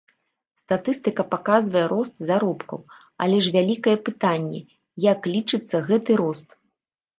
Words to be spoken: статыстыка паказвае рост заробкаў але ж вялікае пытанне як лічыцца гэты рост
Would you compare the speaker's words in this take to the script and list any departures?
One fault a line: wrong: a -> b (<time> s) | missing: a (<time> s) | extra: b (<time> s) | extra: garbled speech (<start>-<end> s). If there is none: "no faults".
no faults